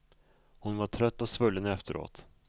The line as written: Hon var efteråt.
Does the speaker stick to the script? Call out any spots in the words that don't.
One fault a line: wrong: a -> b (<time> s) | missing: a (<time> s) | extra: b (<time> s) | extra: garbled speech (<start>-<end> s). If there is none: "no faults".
extra: trött och svullen (0.9 s)